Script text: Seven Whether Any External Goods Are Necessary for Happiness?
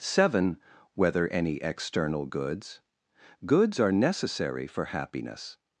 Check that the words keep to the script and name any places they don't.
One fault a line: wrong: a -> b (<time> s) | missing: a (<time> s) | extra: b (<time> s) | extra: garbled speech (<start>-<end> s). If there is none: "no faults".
extra: Goods (3.5 s)